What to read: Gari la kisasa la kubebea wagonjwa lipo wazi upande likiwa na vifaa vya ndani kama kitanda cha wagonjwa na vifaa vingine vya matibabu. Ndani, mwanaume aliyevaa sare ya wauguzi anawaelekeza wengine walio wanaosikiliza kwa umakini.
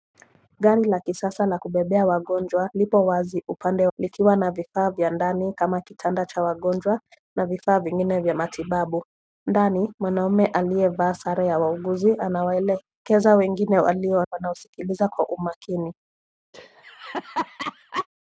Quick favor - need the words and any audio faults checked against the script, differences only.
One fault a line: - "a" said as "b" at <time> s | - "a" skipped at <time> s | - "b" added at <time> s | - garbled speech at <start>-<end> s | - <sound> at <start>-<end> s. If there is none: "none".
- laugh at 16.5-18.1 s